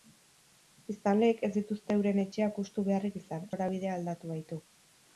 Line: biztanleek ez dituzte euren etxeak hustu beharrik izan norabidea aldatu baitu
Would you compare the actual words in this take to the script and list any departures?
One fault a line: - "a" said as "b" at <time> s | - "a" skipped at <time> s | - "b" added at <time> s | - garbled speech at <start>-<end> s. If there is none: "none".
none